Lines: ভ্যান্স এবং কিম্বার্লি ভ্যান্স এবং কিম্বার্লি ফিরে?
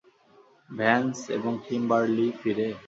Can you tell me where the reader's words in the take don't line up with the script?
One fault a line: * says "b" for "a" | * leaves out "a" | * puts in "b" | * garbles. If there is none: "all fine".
* leaves out "ভ্যান্স এবং কিম্বার্লি"